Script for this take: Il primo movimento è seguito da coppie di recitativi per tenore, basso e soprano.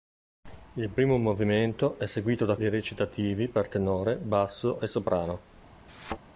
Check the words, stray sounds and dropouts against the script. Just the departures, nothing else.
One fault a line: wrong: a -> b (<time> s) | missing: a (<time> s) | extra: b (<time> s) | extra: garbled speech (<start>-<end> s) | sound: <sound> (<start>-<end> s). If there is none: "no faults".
missing: coppie (2.6 s)
sound: thud (5.9-6.2 s)